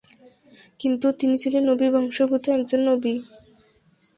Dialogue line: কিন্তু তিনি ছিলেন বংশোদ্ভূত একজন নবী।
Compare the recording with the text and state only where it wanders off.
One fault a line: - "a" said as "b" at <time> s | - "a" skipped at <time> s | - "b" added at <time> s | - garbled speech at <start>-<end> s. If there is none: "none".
- "নবী" added at 1.7 s